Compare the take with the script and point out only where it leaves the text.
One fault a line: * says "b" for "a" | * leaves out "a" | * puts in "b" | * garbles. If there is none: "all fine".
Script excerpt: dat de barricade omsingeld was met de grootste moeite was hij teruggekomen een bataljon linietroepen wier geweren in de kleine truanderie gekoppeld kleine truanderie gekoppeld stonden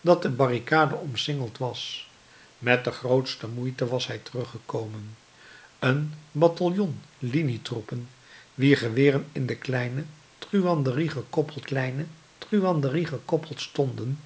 all fine